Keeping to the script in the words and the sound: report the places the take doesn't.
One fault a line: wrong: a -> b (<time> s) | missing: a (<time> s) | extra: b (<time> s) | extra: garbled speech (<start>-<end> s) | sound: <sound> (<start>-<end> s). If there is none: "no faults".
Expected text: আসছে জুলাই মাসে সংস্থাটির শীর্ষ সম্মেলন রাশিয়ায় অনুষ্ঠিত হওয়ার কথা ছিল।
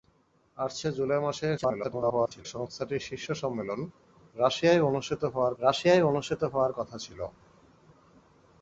extra: garbled speech (1.6-2.5 s)
extra: রাশিয়ায় অনুষ্ঠিত হওয়ার (5.6 s)